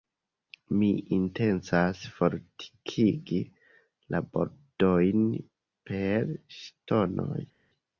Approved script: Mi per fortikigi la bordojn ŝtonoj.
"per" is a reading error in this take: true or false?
true